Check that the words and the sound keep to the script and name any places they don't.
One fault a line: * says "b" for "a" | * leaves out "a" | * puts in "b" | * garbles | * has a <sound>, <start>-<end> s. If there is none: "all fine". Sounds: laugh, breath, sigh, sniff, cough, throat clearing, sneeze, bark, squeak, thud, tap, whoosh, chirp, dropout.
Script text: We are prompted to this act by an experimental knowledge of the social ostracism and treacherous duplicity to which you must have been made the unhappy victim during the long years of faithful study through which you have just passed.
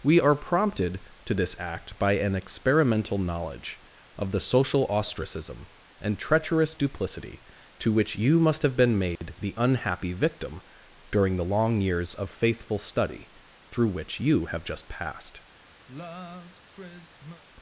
* has a dropout, 9.2-9.2 s
* has a sigh, 15.9-17.4 s